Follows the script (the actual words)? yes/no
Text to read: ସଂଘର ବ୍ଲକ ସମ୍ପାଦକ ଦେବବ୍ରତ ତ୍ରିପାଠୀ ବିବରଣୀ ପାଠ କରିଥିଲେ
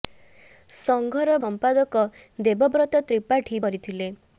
no